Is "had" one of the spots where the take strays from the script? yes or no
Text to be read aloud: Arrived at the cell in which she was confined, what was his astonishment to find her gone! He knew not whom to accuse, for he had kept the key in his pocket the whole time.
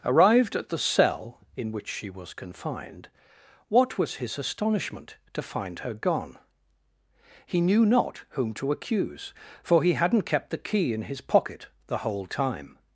yes